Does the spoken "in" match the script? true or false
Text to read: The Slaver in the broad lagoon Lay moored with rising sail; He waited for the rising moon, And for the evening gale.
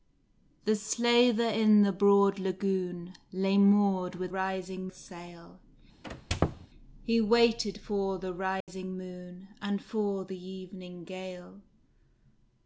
true